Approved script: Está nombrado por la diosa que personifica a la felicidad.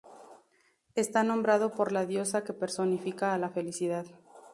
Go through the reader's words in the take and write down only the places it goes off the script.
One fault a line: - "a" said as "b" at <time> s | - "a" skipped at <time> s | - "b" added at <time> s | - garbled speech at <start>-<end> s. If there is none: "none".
none